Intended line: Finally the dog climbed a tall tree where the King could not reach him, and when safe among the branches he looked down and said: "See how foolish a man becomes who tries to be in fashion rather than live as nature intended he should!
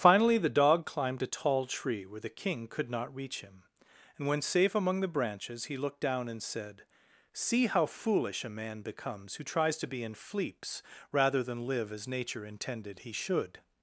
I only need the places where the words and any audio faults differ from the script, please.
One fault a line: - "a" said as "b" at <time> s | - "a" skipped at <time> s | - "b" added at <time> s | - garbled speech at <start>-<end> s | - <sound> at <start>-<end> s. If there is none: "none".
- "fashion" said as "fleeps" at 10.1 s